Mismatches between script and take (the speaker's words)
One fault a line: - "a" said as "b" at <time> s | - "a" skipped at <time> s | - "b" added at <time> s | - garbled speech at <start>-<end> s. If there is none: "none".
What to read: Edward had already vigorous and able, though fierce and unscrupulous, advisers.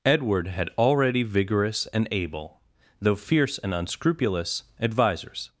none